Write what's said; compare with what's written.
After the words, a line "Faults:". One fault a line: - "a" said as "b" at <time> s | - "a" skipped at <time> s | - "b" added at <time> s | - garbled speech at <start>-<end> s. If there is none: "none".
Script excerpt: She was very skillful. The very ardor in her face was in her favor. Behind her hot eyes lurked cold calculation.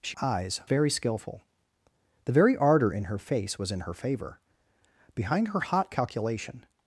She eyes very skillful. The very ardor in her face was in her favor. Behind her hot calculation.
Faults:
- "was" said as "eyes" at 0.2 s
- "eyes lurked cold" skipped at 5.9 s